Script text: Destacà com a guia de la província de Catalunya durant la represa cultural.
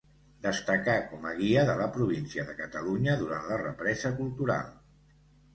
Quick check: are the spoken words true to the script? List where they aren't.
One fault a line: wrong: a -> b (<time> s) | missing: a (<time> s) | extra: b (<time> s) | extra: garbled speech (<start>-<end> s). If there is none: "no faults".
no faults